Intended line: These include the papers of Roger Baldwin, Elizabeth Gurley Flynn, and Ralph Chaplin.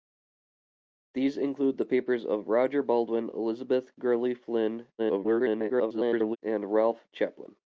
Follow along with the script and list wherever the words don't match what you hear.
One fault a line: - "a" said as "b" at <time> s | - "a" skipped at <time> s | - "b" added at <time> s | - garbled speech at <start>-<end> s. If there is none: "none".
- garbled speech at 5.0-6.4 s